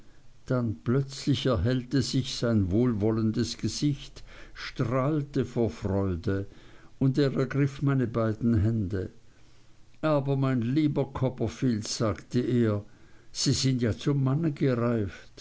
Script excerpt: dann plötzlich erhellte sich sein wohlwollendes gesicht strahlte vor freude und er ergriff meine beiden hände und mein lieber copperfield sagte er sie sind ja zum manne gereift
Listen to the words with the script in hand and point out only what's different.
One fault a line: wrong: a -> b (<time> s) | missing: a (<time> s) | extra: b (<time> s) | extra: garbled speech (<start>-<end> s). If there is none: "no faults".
wrong: und -> aber (10.0 s)